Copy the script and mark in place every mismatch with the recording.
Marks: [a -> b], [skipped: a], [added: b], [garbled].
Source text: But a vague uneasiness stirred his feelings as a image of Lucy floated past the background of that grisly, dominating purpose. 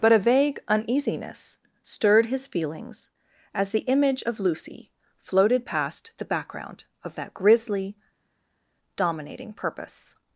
But a vague uneasiness stirred his feelings as [a -> the] image of Lucy floated past the background of that grisly, dominating purpose.